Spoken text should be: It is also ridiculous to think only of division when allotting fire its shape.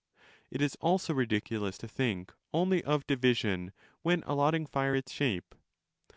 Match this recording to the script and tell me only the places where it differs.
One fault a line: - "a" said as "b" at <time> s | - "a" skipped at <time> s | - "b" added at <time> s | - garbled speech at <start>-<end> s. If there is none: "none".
none